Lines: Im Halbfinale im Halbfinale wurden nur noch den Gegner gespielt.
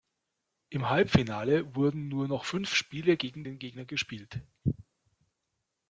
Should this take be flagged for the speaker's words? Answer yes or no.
yes